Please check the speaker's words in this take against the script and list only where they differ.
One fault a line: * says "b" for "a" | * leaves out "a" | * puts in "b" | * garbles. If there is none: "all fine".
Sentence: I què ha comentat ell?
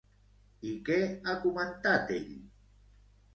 all fine